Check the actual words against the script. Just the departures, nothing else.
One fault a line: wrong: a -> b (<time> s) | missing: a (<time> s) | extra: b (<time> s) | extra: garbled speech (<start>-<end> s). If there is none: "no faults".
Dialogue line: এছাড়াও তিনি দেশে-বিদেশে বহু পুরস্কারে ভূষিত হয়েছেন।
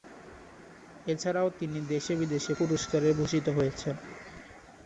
missing: বহু (2.5 s)